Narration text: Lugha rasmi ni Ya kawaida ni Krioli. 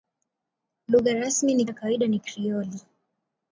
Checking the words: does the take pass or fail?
pass